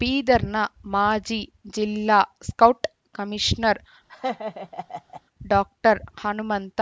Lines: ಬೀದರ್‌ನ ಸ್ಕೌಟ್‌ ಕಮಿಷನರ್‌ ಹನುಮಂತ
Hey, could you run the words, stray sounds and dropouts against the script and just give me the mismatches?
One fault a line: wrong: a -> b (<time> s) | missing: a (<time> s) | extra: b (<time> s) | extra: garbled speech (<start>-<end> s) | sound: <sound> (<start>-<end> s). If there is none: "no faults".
extra: ಮಾಜಿ ಜಿಲ್ಲಾ (0.8 s)
sound: laugh (4.1-5.2 s)
extra: ಡಾಕ್ಟರ್ (5.5 s)